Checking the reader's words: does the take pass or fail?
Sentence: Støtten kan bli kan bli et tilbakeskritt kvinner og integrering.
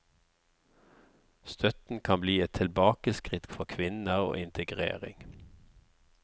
fail